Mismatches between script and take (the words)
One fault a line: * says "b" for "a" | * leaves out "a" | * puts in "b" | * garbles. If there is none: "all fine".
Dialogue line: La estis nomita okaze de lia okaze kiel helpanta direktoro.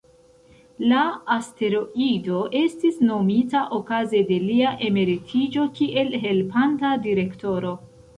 * puts in "asteroido"
* says "emeritiĝo" for "okaze"